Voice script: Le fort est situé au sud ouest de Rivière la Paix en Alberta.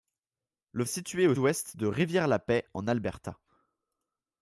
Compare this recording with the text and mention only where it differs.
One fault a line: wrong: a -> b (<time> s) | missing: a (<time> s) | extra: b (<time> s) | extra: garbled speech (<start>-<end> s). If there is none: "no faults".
missing: fort (0.8 s)
missing: sud (1.4 s)